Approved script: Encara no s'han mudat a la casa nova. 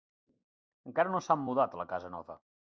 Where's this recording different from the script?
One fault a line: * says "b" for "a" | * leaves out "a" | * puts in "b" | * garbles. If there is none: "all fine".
all fine